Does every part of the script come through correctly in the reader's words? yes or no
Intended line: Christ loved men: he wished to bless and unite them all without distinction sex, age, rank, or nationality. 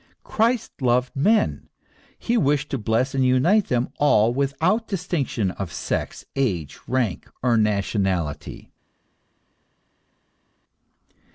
no